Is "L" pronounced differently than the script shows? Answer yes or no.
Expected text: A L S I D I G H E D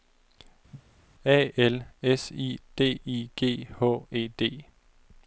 no